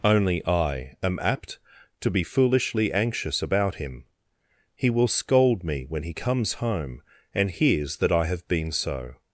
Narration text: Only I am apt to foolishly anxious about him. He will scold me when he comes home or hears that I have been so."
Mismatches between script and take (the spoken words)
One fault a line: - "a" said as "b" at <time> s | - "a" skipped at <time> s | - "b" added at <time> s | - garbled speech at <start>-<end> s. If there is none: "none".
- "be" added at 2.1 s
- "or" said as "and" at 7.3 s